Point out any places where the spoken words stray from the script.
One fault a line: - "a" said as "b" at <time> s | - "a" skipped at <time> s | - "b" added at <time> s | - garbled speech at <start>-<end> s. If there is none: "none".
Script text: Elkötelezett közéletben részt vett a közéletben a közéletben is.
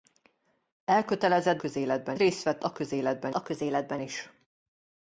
none